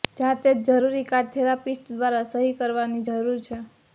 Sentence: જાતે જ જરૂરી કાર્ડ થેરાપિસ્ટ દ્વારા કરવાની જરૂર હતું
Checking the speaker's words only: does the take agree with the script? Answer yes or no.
no